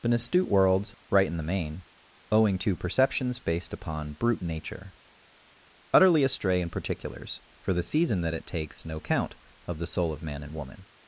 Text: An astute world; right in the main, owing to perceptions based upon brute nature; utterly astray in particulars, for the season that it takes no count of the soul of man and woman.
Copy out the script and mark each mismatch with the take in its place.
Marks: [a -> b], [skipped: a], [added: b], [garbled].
An astute world; right in the main, owing to perceptions based upon brute nature; utterly astray in particulars, for the season that it takes no count of the soul of man and woman.